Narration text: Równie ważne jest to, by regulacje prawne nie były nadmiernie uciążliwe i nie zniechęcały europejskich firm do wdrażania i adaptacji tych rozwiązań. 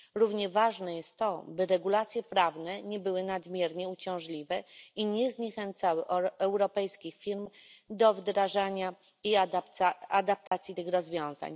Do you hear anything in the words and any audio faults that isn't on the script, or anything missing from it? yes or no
yes